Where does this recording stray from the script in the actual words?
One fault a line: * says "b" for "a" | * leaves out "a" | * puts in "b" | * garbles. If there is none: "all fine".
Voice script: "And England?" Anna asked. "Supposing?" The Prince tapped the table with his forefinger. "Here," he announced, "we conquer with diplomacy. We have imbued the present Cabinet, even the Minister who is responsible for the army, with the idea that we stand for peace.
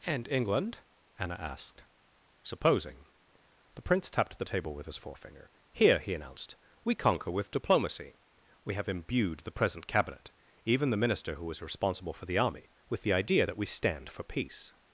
all fine